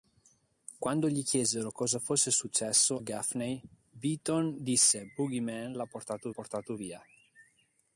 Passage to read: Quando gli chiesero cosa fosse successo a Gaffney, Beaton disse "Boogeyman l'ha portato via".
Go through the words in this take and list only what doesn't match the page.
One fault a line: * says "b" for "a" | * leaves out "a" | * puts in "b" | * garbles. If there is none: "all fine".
* leaves out "a"
* puts in "portato"